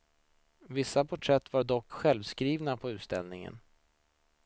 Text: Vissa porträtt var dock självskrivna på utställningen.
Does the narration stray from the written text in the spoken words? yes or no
no